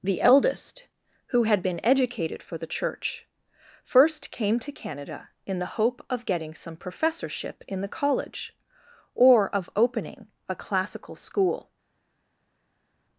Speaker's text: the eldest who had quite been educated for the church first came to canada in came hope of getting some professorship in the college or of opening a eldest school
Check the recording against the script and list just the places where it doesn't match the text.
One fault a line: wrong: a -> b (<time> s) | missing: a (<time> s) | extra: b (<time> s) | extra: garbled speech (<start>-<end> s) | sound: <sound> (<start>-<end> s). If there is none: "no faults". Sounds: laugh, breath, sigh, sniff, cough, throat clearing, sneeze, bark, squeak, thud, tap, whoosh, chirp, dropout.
missing: quite (1.6 s)
wrong: came -> the (5.6 s)
wrong: eldest -> classical (10.6 s)